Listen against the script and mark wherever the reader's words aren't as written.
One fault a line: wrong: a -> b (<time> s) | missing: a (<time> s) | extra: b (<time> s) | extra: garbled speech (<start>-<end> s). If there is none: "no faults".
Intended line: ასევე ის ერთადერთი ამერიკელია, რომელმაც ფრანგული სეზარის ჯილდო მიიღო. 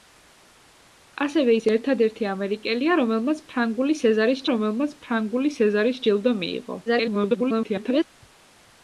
extra: რომელმაც ფრანგული სეზარის (4.5 s)
extra: garbled speech (6.9-8.0 s)